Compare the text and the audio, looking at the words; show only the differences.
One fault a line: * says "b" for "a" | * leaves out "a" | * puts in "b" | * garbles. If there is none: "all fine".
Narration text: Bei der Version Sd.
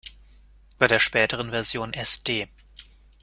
* puts in "späteren"